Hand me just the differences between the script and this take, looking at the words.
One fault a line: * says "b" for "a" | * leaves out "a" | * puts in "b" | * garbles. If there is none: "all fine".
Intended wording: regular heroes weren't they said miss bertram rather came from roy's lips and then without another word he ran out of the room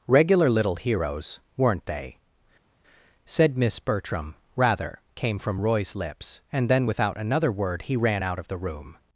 * puts in "little"